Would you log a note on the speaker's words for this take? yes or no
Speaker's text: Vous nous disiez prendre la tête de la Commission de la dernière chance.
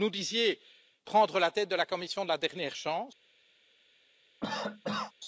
no